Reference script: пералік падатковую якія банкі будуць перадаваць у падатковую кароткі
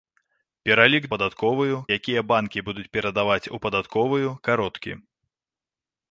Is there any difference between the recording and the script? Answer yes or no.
no